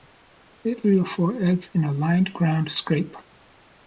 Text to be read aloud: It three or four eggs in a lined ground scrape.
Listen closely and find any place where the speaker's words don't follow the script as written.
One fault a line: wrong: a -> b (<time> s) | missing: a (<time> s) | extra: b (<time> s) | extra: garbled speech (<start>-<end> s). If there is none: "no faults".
no faults